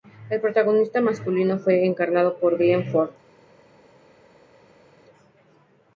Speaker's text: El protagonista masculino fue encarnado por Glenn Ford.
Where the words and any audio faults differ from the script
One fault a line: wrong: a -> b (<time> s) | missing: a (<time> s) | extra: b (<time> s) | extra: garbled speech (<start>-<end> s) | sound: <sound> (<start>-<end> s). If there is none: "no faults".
no faults